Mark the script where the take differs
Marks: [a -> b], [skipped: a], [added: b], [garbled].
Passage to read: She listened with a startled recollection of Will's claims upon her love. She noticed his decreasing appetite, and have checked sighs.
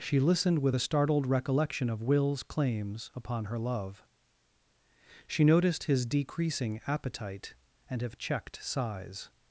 She listened with a startled recollection of Will's claims upon her love. She noticed his decreasing appetite, and have checked sighs.